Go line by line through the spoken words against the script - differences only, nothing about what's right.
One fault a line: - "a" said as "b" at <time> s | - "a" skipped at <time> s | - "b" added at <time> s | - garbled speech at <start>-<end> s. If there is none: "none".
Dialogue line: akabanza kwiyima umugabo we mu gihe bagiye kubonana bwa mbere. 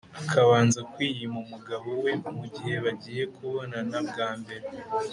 none